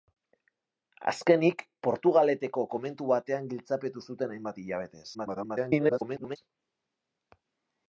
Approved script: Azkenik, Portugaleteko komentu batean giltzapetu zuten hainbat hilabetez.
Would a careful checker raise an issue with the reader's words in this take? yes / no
yes